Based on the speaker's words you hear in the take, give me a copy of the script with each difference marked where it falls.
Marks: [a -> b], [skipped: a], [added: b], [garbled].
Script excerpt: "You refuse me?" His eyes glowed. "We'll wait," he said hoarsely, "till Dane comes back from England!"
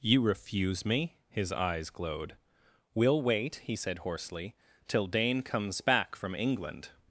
"You refuse me?" His eyes glowed. "We'll wait," he said hoarsely, "till Dane comes back from England!"